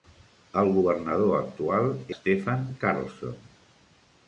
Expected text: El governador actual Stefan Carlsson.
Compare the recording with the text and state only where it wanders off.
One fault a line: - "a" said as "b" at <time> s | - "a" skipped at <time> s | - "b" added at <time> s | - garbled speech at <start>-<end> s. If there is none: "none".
none